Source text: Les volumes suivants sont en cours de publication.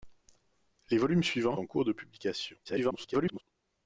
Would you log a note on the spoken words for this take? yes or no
yes